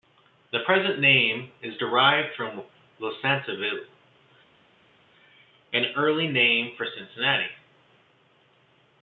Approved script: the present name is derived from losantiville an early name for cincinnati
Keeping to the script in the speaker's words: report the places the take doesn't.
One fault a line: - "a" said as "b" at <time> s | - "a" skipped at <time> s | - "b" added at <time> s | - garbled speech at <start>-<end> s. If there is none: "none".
none